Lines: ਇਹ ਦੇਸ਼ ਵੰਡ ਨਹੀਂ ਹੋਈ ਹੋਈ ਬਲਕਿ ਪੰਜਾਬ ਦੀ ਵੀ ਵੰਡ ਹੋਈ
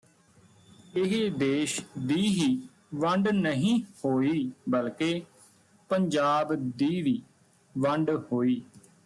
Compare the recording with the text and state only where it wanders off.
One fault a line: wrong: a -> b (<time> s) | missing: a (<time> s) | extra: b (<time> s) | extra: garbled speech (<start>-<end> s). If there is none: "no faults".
extra: ਦੀ ਹੀ (2.0 s)
missing: ਹੋਈ (4.5 s)